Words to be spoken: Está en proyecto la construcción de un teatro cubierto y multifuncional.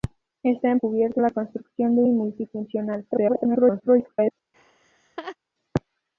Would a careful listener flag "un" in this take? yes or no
yes